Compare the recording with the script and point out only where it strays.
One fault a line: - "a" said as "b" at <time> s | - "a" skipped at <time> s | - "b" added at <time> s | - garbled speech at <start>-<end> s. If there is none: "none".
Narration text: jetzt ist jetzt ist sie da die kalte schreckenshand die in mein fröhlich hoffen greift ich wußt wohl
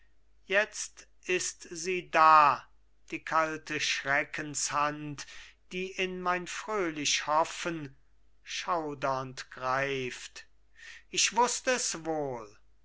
- "jetzt ist" skipped at 1.6 s
- "schaudernd" added at 8.4 s
- "es" added at 11.7 s